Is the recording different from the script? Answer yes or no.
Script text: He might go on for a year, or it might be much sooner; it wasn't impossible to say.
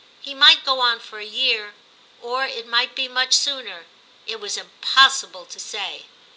yes